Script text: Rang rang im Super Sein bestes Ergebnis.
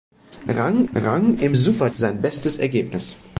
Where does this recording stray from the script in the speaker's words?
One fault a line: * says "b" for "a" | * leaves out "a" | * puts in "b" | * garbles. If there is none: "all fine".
all fine